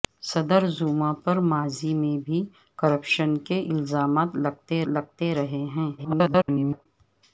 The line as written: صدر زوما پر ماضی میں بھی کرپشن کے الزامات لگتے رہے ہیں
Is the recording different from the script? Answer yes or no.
yes